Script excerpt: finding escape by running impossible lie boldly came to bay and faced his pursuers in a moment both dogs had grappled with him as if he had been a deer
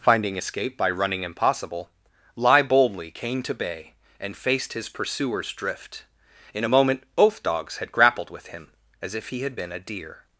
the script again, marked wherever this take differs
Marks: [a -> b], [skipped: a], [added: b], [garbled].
finding escape by running impossible lie boldly came to bay and faced his pursuers [added: drift] in a moment both dogs had grappled with him as if he had been a deer